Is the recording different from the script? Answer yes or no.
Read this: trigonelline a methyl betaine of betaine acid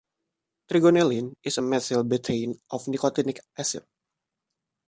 yes